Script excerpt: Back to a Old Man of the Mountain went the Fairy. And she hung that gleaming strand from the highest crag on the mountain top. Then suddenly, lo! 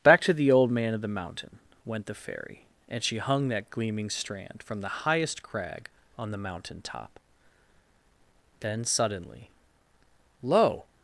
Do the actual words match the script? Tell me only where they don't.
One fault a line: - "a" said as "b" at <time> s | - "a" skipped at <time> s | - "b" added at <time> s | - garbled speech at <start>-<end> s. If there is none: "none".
- "a" said as "the" at 0.3 s